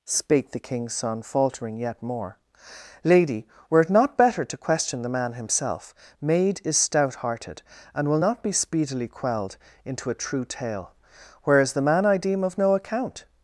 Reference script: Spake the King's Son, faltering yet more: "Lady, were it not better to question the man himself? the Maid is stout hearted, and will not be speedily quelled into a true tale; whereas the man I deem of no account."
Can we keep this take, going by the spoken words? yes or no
no